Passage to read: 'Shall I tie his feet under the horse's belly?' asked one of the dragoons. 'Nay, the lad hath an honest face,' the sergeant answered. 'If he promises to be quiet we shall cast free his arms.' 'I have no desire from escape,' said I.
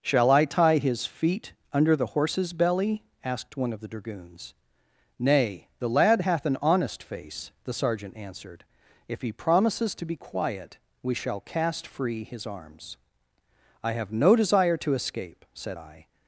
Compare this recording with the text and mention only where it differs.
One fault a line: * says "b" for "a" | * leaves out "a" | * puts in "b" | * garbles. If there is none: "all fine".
* says "to" for "from"